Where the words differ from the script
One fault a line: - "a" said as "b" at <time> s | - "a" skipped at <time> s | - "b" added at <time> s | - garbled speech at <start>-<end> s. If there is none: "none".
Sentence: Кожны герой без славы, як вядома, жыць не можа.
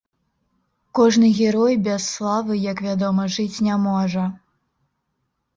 none